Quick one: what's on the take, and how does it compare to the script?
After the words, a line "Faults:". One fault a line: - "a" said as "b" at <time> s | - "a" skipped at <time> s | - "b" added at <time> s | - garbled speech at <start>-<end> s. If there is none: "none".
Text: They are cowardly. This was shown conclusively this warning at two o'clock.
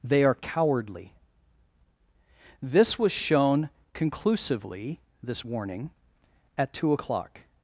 They are cowardly. This was shown conclusively this warning at two o'clock.
Faults:
none